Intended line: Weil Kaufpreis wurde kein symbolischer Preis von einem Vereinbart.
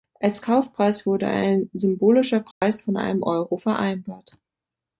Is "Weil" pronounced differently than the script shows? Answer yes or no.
yes